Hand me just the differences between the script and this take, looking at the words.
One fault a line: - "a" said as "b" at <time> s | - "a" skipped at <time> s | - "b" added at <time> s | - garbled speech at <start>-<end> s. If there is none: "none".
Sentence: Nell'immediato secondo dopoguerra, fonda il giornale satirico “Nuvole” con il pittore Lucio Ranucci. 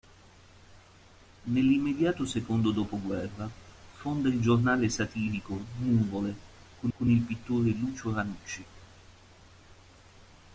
- "con" added at 7.0 s